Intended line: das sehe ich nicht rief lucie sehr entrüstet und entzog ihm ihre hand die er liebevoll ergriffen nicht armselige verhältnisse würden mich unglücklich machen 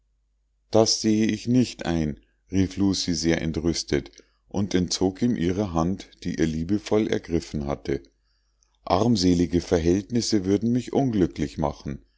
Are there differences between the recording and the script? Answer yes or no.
yes